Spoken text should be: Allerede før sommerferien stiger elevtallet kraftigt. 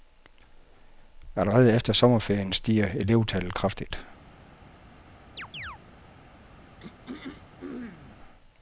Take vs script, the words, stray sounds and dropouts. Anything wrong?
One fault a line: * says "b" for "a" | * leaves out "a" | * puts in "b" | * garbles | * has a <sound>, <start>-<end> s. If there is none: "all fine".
* says "efter" for "før"
* has a chirp, 5.4-5.8 s
* has a throat clearing, 6.8-8.2 s